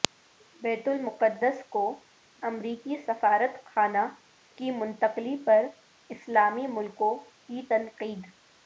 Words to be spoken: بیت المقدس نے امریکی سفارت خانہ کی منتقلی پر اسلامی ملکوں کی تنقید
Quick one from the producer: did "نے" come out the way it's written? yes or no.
no